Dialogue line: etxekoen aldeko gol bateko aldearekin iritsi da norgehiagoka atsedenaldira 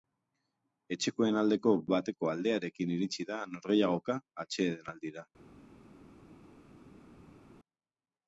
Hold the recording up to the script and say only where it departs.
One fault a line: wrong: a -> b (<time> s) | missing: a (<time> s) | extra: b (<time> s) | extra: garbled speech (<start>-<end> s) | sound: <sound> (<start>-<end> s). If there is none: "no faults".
missing: gol (1.7 s)